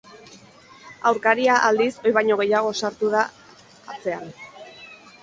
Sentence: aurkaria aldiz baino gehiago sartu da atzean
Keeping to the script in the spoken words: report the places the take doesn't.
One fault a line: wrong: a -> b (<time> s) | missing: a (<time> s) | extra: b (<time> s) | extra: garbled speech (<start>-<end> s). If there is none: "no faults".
extra: ohi (2.0 s)